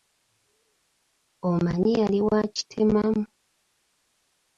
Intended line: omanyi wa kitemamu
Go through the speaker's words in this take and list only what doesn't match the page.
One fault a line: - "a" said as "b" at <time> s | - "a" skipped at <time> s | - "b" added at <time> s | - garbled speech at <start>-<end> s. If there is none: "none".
- "yali" added at 2.0 s